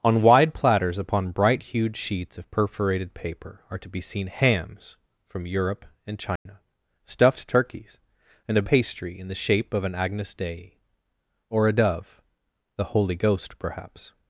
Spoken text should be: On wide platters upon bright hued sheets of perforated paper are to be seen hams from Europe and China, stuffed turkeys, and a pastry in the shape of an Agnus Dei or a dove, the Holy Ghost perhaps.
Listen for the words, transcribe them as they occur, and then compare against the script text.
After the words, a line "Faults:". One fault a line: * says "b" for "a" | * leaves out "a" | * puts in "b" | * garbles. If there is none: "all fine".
On wide platters upon bright hued sheets of perforated paper are to be seen hams from Europe and China, stuffed turkeys, and a pastry in the shape of an Agnus Dei or a dove, the Holy Ghost perhaps.
Faults:
all fine